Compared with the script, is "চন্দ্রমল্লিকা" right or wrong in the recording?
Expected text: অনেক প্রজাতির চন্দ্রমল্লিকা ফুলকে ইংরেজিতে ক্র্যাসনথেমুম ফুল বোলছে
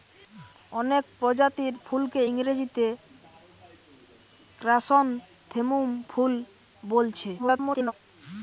wrong